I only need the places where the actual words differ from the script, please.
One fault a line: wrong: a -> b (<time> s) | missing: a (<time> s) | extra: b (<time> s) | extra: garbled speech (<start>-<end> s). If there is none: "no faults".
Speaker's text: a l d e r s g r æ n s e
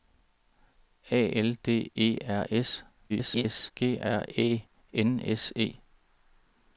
extra: garbled speech (3.1-3.7 s)